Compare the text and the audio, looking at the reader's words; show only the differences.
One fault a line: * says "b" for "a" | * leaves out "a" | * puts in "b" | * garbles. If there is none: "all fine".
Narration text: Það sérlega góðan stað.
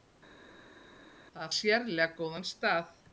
all fine